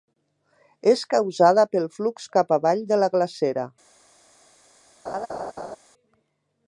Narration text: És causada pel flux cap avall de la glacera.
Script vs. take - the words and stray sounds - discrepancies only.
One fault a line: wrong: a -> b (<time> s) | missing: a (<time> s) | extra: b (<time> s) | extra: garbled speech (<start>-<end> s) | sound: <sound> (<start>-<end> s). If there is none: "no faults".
sound: laugh (5.1-5.8 s)